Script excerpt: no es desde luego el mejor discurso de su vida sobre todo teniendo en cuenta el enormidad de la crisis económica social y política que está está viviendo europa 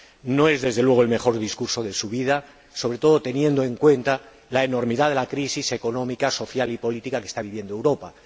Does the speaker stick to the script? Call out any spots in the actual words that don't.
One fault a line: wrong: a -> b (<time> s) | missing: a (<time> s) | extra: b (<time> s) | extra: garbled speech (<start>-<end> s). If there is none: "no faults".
wrong: el -> la (4.5 s)
missing: está (7.4 s)